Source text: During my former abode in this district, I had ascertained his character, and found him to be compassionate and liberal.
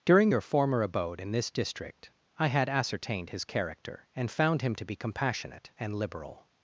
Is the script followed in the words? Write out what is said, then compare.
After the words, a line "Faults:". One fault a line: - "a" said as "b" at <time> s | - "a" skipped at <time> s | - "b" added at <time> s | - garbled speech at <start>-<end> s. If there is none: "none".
During your former abode in this district, I had ascertained his character, and found him to be compassionate and liberal.
Faults:
- "my" said as "your" at 0.3 s